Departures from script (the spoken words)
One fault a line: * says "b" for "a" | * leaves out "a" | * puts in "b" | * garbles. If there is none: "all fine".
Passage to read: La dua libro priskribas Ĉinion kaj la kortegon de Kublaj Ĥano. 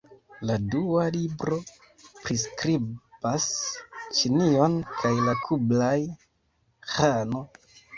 * leaves out "kortegon de"